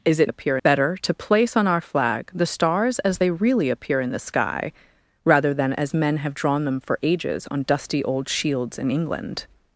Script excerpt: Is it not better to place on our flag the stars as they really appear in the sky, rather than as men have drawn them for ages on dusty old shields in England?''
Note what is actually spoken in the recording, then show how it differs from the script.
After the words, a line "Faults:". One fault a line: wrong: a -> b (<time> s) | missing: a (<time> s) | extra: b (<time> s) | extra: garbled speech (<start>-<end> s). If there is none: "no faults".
Is it appear better to place on our flag the stars as they really appear in the sky, rather than as men have drawn them for ages on dusty old shields in England?''
Faults:
wrong: not -> appear (0.3 s)